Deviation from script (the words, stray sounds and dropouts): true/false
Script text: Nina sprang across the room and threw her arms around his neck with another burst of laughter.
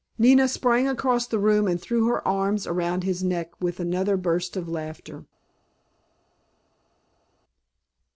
false